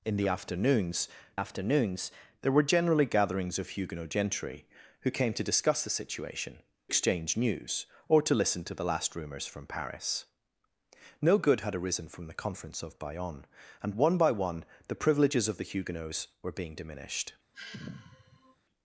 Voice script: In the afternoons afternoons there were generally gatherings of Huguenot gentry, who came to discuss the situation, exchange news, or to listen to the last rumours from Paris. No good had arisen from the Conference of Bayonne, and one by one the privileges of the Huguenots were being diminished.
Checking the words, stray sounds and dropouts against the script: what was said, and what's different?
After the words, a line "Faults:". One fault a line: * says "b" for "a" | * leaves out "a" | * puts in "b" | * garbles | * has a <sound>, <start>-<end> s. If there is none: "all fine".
In the afternoons afternoons there were generally gatherings of Huguenot gentry, who came to discuss the situation, exchange news, or to listen to the last rumours from Paris. No good had arisen from the Conference of Bayonne, and one by one the privileges of the Huguenots were being diminished.
Faults:
* has a sigh, 17.5-18.6 s